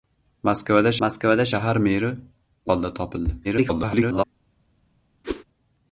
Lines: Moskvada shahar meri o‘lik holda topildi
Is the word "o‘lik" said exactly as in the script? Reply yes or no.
no